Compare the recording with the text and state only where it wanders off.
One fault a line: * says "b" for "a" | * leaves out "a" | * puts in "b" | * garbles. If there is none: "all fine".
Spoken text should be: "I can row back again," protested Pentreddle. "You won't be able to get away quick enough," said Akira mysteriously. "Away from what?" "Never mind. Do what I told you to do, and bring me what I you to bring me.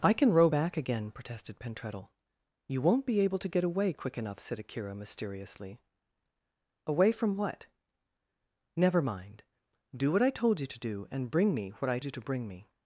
all fine